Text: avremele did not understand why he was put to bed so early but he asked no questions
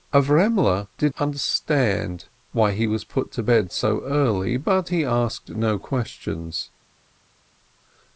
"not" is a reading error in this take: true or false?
true